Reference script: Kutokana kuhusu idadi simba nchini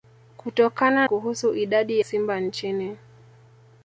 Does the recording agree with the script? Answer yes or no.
yes